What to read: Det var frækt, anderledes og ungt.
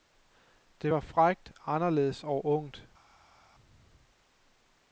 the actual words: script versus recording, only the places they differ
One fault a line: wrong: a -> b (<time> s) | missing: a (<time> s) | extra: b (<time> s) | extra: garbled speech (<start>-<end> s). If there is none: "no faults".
no faults